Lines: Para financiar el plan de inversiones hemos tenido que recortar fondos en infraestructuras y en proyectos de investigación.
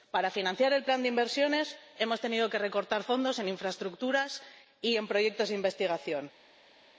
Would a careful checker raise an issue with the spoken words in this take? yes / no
no